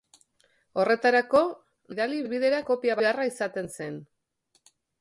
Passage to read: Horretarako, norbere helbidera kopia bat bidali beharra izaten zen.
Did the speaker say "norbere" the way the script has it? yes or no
no